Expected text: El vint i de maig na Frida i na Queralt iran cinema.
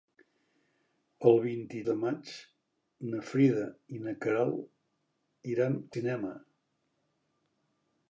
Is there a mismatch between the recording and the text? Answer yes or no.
no